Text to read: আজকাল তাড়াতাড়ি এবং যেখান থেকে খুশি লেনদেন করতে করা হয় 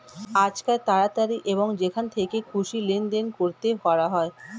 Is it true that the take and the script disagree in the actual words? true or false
false